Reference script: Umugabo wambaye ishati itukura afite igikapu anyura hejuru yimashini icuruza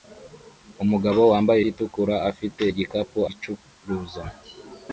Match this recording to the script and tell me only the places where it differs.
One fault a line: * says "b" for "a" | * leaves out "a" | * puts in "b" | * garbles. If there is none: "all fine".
* leaves out "ishati"
* leaves out "anyura hejuru yimashini"